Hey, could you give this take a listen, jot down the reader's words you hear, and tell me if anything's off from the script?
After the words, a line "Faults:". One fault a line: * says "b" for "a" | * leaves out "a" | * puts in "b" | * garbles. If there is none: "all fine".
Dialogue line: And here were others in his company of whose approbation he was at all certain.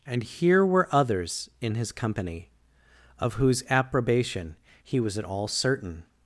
And here were others in his company of whose approbation he was at all certain.
Faults:
all fine